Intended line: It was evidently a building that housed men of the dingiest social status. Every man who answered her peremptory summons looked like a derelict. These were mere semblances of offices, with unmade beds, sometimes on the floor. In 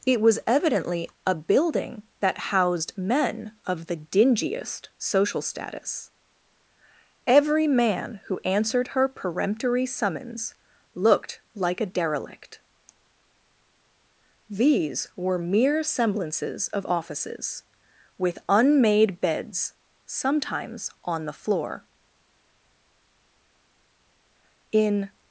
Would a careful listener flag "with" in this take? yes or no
no